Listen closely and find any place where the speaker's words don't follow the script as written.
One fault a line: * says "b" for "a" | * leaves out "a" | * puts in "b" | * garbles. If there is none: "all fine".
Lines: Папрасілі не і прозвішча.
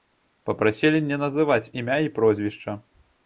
* puts in "называць імя"